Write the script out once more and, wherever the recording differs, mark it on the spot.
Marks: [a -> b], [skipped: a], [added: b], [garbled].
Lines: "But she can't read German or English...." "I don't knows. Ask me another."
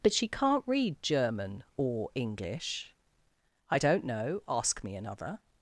"But she can't read German or English...." "I don't [knows. -> know] Ask me another."